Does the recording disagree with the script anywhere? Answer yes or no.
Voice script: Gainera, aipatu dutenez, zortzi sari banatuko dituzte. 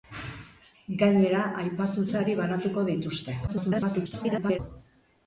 yes